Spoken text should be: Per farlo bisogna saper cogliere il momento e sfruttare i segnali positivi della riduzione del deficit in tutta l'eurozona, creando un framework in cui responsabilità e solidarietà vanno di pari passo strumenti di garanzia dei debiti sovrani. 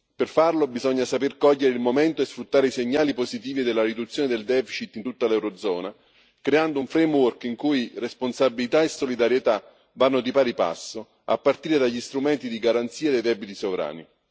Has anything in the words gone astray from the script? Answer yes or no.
yes